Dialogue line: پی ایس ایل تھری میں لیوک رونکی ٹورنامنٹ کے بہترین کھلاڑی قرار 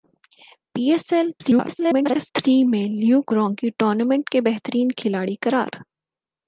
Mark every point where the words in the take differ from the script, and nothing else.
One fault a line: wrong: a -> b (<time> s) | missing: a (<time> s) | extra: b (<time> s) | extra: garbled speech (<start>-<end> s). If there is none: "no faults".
extra: garbled speech (1.4-2.3 s)